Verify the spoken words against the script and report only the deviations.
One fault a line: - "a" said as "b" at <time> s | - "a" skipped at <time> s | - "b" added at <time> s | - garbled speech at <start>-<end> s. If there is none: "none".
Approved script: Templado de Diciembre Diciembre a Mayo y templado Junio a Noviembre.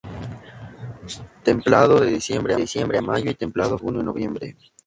none